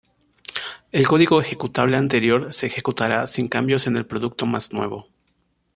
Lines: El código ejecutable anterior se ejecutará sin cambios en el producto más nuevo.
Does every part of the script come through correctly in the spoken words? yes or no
yes